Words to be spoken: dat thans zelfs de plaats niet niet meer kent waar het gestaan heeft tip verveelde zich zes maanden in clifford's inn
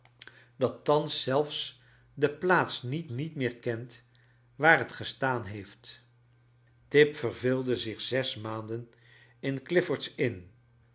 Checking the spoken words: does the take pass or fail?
pass